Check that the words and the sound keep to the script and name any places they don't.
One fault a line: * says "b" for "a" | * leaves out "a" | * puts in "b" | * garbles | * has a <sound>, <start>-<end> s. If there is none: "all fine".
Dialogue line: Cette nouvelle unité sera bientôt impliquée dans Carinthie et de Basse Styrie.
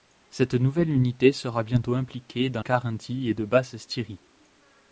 all fine